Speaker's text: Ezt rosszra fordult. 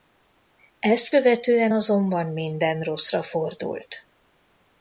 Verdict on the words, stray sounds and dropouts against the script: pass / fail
fail